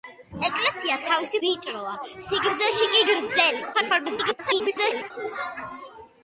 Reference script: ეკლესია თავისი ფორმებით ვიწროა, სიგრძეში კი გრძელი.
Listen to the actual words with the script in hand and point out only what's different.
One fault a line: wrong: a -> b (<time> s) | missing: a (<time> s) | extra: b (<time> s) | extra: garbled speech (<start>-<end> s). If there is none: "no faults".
missing: ფორმებით (1.4 s)
extra: garbled speech (3.7-5.1 s)